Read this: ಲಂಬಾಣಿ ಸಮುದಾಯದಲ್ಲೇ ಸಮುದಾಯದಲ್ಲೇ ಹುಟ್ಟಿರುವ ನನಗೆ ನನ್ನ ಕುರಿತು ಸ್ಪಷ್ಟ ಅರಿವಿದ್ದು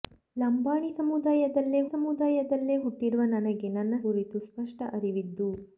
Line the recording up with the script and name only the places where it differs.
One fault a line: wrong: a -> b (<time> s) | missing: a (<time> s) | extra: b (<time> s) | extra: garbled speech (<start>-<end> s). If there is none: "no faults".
no faults